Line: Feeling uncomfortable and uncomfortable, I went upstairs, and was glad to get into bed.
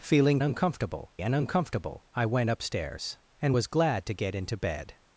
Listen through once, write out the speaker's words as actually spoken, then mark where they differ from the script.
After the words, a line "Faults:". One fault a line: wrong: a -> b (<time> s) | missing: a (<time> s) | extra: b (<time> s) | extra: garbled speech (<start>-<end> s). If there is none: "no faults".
Feeling uncomfortable and uncomfortable, I went upstairs, and was glad to get into bed.
Faults:
no faults